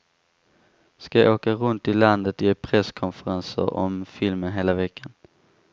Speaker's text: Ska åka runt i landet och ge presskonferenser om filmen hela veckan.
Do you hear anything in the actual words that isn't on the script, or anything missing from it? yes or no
no